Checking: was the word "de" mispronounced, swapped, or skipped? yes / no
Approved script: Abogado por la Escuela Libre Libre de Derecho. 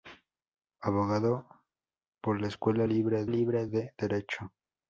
no